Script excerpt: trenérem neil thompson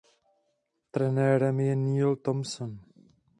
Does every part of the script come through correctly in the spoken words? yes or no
no